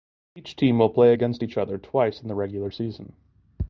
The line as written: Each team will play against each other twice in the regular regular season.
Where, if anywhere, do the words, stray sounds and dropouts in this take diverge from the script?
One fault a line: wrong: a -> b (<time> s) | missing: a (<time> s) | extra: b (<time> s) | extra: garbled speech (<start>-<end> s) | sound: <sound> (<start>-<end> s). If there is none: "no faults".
missing: regular (2.7 s)